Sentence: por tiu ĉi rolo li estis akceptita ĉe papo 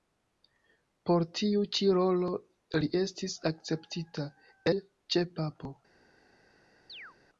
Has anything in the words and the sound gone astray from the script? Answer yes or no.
yes